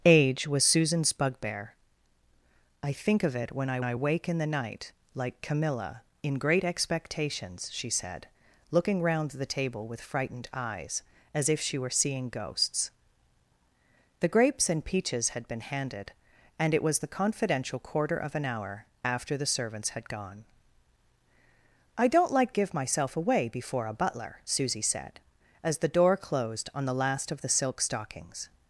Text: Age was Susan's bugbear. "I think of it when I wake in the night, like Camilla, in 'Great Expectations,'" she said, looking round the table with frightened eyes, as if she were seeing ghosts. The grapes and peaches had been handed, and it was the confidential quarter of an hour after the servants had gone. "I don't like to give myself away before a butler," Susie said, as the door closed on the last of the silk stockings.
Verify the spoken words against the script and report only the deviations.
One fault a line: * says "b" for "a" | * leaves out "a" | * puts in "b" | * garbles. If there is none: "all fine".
* puts in "I"
* leaves out "to"